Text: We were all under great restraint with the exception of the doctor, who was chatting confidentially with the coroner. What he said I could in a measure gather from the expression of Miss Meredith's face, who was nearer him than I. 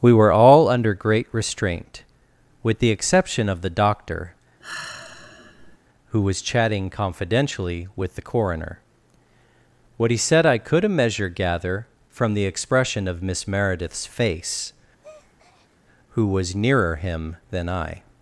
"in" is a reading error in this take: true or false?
true